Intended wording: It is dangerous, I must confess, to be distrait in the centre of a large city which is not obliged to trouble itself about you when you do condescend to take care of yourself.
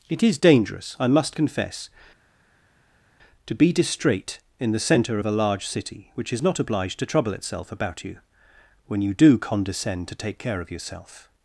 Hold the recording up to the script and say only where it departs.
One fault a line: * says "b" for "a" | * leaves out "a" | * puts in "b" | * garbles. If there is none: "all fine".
all fine